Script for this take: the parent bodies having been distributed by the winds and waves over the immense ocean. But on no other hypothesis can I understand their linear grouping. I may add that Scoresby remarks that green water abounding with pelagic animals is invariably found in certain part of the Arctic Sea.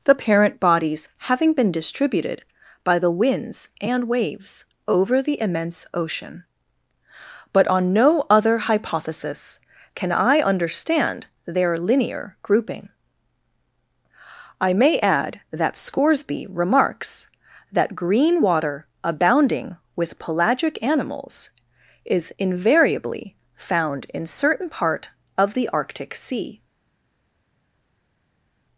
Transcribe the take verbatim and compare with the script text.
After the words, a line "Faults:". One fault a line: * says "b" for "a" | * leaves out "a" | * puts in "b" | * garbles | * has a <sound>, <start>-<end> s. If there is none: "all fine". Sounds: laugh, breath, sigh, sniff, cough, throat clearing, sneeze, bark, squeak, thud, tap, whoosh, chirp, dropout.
the parent bodies having been distributed by the winds and waves over the immense ocean. But on no other hypothesis can I understand their linear grouping. I may add that Scoresby remarks that green water abounding with pelagic animals is invariably found in certain part of the Arctic Sea.
Faults:
all fine